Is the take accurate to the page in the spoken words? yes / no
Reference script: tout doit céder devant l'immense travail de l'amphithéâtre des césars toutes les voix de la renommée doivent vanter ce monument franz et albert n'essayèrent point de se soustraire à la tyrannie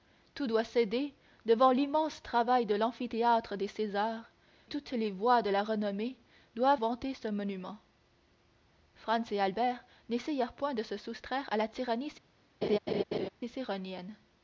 yes